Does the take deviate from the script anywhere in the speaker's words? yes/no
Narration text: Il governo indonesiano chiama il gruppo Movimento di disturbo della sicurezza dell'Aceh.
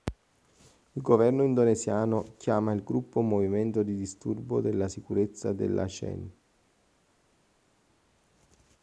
no